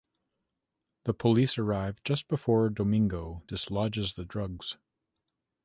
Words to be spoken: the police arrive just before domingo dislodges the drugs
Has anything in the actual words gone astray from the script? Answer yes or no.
no